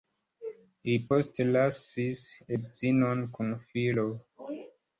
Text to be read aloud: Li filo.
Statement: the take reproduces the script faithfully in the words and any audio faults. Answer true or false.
false